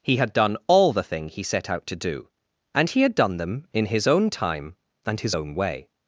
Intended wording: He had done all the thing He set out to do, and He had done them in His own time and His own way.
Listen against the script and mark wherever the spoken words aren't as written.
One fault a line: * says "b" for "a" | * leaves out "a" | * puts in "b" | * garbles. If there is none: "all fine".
all fine